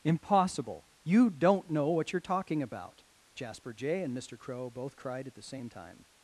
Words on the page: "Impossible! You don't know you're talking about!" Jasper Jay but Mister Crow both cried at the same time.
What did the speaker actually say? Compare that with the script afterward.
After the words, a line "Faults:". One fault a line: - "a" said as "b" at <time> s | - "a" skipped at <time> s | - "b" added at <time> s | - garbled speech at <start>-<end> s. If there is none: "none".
"Impossible! You don't know what you're talking about!" Jasper Jay and Mister Crow both cried at the same time.
Faults:
- "what" added at 1.9 s
- "but" said as "and" at 4.0 s